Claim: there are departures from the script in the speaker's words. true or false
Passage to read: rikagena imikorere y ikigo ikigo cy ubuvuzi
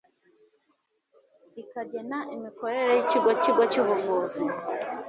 false